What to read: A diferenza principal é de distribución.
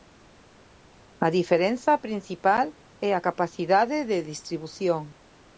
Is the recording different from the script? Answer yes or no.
yes